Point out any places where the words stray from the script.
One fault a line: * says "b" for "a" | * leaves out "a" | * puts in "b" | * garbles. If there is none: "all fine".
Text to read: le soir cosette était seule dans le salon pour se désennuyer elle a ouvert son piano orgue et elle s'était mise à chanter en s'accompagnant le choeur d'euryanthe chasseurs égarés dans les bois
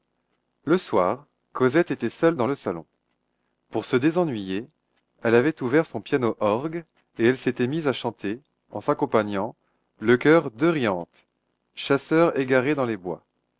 * says "avait" for "a"